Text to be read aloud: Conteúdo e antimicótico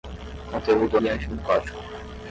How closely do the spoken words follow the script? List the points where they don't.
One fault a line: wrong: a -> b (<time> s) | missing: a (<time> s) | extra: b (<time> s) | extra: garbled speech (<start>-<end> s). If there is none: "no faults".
no faults